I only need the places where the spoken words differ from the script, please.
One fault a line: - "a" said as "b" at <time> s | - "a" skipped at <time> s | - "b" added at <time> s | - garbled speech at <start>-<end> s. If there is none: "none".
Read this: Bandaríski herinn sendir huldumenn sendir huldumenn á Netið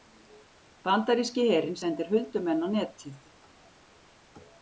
- "sendir huldumenn" skipped at 2.6 s